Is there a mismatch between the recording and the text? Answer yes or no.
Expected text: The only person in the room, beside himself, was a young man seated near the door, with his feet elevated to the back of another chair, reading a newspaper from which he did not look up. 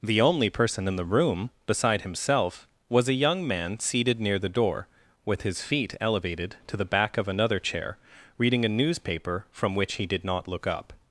no